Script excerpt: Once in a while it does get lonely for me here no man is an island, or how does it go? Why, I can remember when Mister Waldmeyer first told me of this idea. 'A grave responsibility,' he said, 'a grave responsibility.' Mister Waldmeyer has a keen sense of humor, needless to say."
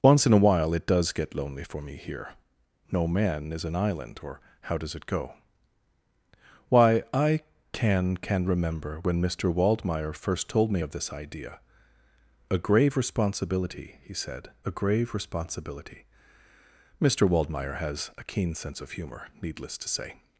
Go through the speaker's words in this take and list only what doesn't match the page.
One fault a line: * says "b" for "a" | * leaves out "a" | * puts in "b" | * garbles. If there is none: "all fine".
* puts in "can"